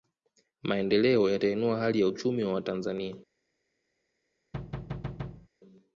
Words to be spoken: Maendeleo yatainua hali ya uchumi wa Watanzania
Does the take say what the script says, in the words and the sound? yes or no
no